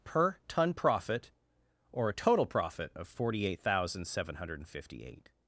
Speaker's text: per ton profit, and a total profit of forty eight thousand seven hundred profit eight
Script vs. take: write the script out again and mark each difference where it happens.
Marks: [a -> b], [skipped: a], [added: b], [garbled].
per ton profit, [and -> or] a total profit of forty eight thousand seven hundred [profit -> fifty] eight